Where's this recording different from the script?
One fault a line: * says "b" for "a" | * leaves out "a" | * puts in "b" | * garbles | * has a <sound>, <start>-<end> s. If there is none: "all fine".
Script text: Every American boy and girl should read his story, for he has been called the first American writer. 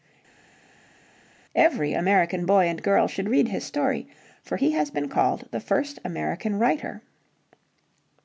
all fine